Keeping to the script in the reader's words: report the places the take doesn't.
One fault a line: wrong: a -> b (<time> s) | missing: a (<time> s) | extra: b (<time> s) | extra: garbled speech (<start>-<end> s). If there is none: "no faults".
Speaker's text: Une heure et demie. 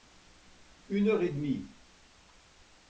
no faults